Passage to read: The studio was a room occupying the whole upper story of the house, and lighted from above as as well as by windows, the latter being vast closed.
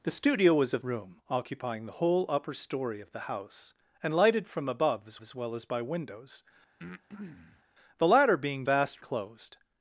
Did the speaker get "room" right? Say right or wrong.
right